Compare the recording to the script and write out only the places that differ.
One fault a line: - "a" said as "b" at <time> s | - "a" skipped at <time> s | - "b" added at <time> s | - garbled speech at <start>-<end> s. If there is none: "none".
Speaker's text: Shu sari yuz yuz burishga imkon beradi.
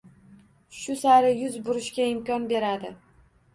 - "yuz" skipped at 1.6 s